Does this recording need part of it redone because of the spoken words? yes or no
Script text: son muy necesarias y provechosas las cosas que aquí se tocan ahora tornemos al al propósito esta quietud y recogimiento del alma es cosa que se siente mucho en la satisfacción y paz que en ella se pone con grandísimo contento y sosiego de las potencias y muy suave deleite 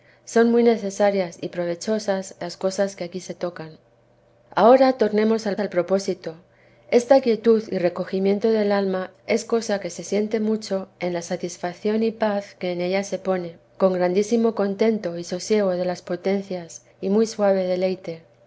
no